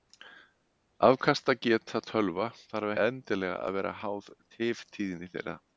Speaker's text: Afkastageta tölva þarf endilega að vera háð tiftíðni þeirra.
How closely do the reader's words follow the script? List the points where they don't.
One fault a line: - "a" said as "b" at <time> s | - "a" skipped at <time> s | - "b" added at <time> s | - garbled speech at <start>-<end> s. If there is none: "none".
none